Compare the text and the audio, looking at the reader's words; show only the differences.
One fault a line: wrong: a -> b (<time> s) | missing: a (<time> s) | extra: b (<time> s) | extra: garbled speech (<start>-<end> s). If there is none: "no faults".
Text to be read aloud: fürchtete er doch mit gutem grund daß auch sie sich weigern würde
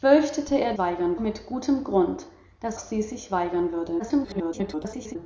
wrong: doch -> weigern (0.8 s)
missing: auch (2.8 s)
extra: garbled speech (4.0-5.2 s)